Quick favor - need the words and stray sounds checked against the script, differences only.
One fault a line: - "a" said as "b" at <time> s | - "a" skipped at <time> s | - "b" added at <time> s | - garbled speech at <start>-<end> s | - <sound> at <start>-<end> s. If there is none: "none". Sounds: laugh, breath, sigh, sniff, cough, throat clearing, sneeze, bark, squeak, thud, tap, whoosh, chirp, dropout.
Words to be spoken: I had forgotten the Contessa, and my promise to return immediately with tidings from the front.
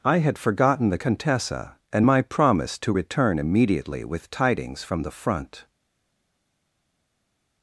none